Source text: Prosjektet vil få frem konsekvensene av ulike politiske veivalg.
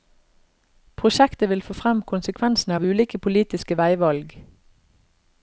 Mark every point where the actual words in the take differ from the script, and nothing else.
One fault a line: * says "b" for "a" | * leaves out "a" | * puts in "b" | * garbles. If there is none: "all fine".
all fine